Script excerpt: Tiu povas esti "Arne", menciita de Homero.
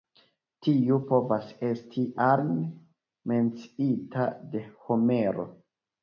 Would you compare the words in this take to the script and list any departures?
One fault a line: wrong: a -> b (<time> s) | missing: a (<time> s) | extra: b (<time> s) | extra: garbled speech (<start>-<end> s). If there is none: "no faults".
no faults